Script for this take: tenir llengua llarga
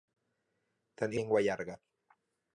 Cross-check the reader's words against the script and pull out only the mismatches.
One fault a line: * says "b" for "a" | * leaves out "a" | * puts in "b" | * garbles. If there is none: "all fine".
all fine